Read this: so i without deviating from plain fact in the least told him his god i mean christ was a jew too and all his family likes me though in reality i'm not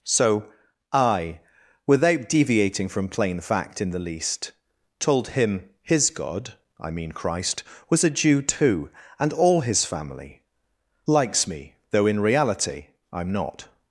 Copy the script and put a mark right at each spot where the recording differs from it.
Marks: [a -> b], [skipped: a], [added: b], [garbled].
so i without deviating from plain fact in the least told him his god i mean christ was a jew too and all his family likes me though in reality i'm not